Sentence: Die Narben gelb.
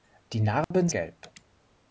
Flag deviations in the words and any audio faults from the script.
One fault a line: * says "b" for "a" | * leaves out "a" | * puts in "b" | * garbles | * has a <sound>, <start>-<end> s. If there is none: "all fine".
* has a dropout, 0.6-0.7 s